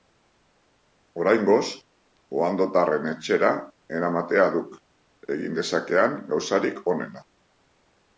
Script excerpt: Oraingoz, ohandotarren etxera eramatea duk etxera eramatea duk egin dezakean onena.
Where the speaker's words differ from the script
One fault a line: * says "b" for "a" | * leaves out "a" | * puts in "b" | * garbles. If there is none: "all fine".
* leaves out "etxera eramatea duk"
* puts in "gauzarik"